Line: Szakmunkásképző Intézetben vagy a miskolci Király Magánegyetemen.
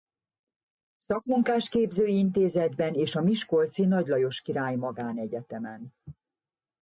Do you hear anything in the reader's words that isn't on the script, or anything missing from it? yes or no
yes